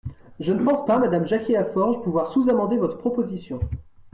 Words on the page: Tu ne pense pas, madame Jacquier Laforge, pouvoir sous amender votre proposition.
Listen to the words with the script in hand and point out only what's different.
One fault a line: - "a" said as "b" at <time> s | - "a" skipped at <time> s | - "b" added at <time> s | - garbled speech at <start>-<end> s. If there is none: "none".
- "Tu" said as "Je" at 0.4 s